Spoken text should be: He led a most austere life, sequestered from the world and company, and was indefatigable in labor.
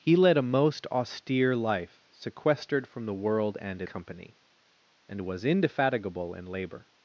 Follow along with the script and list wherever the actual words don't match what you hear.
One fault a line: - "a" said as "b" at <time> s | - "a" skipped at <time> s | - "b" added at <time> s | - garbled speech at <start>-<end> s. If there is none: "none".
none